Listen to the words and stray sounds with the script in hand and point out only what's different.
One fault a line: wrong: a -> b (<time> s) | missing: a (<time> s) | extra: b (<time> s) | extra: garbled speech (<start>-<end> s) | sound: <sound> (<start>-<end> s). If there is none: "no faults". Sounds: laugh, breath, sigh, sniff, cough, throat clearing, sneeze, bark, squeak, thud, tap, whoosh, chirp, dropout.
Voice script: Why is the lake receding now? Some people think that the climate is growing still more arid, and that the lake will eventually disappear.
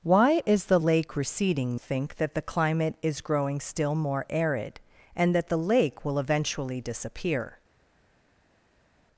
missing: now Some people (1.7 s)